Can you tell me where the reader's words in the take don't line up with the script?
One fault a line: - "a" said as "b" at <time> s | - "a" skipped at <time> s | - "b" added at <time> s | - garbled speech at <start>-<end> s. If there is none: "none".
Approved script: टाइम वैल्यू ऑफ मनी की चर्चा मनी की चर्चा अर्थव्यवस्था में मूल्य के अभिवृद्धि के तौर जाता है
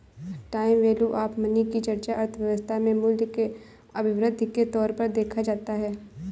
- "मनी की चर्चा" skipped at 2.1 s
- "पर देखा" added at 4.9 s